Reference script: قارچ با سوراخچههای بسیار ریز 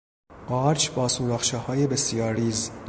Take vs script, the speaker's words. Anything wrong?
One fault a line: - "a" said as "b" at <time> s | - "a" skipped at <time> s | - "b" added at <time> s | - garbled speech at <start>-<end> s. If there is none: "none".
none